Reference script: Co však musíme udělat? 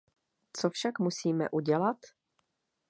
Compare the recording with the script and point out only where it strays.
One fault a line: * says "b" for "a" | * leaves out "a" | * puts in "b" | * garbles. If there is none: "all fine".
all fine